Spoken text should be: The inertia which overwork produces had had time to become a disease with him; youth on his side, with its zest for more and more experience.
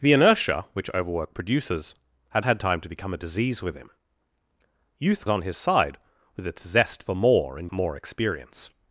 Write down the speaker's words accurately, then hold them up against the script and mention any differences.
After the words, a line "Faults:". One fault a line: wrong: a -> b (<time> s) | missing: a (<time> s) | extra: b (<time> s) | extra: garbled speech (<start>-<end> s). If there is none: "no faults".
The inertia which overwork produces had had time to become a disease with him; youth on his side, with its zest for more and more experience.
Faults:
no faults